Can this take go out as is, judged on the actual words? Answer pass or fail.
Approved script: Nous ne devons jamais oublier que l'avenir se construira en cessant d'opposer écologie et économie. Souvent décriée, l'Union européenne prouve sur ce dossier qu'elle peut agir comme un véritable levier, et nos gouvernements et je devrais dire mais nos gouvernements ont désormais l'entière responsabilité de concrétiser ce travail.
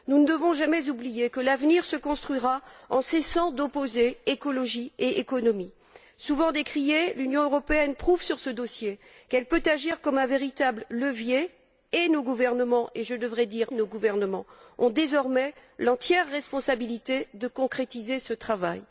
fail